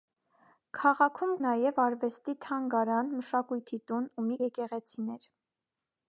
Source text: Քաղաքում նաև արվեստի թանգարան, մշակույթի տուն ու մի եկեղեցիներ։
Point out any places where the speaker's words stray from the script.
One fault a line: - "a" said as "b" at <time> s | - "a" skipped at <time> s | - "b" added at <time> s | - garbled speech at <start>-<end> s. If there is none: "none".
none